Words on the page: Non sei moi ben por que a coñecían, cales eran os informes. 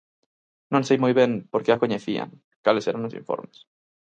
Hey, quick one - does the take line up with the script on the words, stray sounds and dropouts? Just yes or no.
yes